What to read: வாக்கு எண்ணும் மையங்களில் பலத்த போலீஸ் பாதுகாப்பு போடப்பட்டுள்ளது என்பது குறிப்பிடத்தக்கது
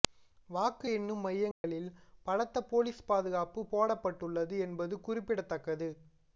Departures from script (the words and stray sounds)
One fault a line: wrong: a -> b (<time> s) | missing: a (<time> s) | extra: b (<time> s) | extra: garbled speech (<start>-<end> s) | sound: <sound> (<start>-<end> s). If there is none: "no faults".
sound: dropout (1.5-1.6 s)